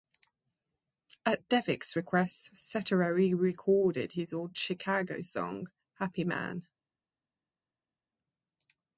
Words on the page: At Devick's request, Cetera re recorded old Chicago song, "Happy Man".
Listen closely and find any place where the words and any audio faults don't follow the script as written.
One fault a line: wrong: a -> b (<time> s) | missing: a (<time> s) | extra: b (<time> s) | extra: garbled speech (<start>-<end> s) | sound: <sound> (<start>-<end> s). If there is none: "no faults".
extra: his (4.1 s)